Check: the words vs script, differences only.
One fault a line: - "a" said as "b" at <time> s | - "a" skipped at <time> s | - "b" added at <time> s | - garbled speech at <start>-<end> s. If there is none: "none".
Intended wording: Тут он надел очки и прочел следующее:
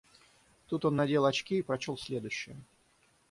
none